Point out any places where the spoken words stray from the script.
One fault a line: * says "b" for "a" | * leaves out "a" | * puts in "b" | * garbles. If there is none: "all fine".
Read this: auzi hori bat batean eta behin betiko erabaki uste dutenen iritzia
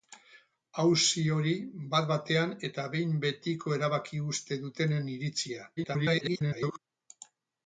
* garbles